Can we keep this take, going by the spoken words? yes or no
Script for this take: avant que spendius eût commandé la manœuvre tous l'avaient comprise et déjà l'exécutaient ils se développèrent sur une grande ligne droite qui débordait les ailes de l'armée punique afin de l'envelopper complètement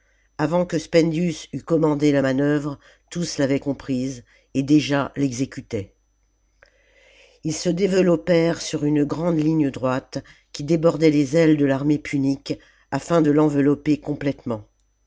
yes